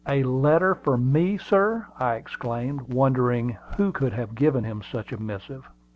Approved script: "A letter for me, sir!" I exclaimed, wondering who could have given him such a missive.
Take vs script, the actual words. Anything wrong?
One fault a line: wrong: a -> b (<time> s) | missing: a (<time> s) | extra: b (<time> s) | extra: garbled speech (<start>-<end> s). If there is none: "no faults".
no faults